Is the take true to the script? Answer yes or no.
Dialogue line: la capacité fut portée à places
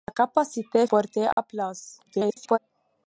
no